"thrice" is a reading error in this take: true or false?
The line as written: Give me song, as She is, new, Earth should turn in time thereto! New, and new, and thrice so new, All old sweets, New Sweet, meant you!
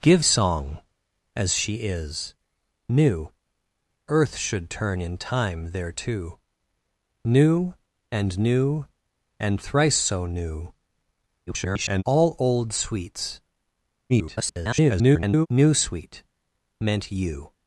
false